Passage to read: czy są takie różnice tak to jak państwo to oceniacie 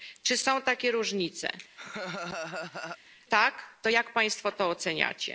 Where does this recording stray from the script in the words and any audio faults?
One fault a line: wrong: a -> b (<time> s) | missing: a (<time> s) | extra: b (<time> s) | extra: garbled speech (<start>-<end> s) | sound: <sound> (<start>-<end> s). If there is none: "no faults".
sound: laugh (1.8-3.0 s)